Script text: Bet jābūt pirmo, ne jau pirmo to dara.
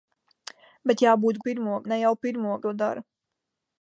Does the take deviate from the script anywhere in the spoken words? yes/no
no